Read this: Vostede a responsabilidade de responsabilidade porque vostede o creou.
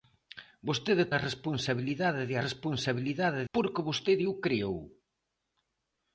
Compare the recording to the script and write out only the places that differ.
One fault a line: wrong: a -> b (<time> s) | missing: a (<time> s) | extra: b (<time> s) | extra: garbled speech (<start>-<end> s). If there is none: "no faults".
no faults